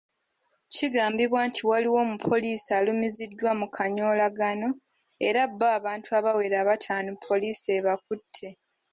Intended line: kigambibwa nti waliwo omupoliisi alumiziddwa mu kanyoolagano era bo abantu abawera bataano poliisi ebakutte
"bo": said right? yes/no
yes